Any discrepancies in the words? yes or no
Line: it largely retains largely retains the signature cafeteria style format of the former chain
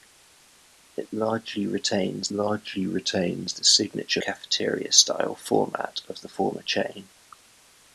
no